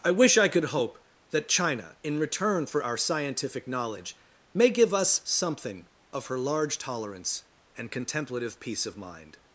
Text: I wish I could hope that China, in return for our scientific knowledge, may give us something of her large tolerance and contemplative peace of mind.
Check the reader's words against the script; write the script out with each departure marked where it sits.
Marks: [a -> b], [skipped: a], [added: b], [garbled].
I wish I could hope that China, in return for our scientific knowledge, may give us something of her large tolerance and contemplative peace of mind.